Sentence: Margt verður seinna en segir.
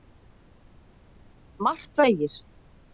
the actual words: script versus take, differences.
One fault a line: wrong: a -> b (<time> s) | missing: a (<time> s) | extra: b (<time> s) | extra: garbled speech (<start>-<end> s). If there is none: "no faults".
missing: verður seinna en (2.0 s)